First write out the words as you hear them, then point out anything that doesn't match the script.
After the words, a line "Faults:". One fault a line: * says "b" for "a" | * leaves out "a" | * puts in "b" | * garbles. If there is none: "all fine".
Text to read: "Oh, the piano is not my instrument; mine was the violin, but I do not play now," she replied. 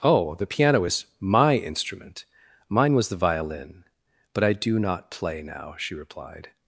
"Oh, the piano is my instrument; mine was the violin, but I do not play now," she replied.
Faults:
* leaves out "not"